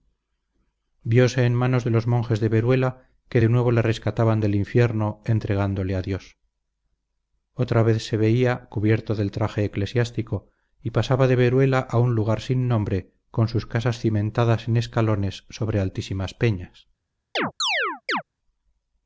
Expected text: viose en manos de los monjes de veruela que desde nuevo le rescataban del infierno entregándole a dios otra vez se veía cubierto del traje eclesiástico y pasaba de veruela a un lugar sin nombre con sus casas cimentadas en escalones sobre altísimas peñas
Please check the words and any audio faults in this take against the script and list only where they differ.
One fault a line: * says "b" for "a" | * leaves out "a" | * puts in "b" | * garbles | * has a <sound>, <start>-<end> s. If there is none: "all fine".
* says "de" for "desde"
* has a chirp, 17.4-18.2 s